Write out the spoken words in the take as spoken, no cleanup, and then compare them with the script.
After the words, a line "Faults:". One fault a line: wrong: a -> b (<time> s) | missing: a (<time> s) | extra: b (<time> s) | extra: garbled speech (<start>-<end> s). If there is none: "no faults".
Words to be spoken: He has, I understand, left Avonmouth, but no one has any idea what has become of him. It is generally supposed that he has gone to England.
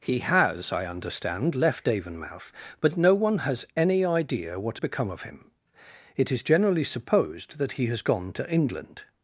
He has, I understand, left Avonmouth, but no one has any idea what become of him. It is generally supposed that he has gone to England.
Faults:
missing: has (4.8 s)